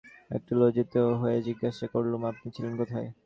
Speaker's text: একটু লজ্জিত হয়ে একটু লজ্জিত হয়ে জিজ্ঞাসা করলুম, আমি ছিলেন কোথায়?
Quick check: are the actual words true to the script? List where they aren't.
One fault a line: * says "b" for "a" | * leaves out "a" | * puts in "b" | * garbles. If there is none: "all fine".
* leaves out "একটু লজ্জিত হয়ে"
* says "আপনি" for "আমি"